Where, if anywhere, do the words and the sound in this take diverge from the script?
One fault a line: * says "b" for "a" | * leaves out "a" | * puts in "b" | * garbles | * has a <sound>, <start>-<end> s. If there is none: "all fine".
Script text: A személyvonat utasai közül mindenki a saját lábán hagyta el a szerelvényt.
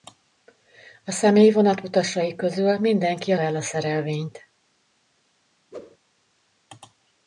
* leaves out "saját lábán hagyta"
* has a whoosh, 5.7-6.0 s